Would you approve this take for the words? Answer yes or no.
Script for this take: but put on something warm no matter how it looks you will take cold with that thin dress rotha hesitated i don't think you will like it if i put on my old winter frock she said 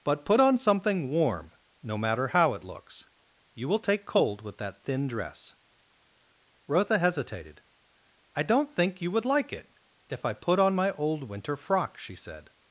no